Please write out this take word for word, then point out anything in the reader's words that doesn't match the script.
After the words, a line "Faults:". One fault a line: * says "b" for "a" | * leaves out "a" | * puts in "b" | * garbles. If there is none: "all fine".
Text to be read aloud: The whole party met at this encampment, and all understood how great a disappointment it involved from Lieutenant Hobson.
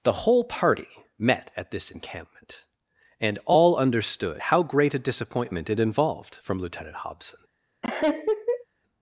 The whole party met at this encampment, and all understood how great a disappointment it involved from Lieutenant Hobson.
Faults:
all fine